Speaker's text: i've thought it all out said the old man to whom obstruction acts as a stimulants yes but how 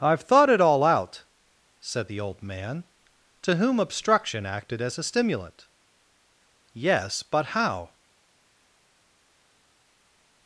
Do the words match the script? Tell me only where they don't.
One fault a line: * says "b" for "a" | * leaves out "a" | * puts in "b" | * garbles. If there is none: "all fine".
* says "acted" for "acts"
* says "stimulant" for "stimulants"